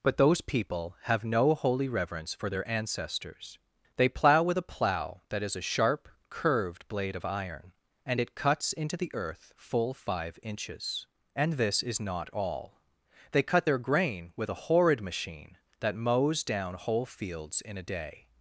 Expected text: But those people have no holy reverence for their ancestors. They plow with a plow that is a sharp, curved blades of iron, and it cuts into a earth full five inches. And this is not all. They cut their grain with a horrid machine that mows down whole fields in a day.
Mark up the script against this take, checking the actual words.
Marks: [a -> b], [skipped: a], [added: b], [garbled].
But those people have no holy reverence for their ancestors. They plow with a plow that is a sharp, curved [blades -> blade] of iron, and it cuts into [a -> the] earth full five inches. And this is not all. They cut their grain with a horrid machine that mows down whole fields in a day.